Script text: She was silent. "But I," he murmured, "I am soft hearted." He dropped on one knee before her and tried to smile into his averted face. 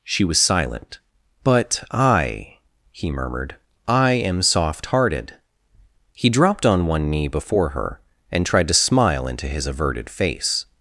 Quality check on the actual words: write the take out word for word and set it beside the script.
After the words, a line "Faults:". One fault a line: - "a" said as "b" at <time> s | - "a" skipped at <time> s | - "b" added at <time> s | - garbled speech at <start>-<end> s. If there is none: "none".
She was silent. "But I," he murmured, "I am soft hearted." He dropped on one knee before her and tried to smile into his averted face.
Faults:
none